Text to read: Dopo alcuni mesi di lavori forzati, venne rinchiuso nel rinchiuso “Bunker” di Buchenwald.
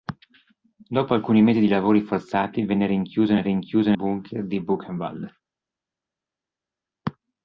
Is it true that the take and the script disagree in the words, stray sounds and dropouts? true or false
false